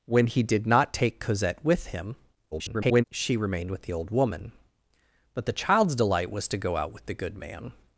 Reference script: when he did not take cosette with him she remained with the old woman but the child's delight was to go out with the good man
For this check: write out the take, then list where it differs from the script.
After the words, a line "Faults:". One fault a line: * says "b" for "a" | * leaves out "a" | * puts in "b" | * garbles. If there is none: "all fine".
when he did not take cosette with him [garbled] she remained with the old woman but the child's delight was to go out with the good man
Faults:
* garbles